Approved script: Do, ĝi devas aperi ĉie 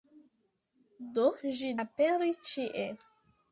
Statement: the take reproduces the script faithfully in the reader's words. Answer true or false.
false